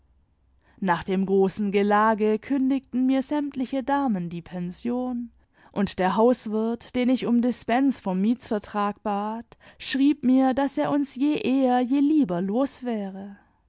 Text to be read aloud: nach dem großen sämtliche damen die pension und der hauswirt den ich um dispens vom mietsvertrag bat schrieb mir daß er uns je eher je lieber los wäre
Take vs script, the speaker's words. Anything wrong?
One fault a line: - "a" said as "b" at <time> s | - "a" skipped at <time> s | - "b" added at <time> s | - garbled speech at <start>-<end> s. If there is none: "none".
- "gelage kündigten mir" added at 1.7 s